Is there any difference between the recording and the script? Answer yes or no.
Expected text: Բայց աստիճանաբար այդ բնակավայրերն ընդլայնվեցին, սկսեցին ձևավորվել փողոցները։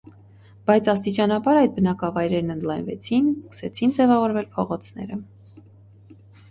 no